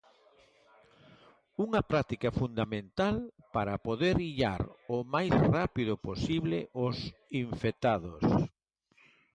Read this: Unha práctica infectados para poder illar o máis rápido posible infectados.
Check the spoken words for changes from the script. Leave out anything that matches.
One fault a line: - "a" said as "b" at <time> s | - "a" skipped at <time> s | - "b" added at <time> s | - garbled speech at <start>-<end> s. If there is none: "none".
- "infectados" said as "fundamental" at 2.4 s
- "os" added at 6.9 s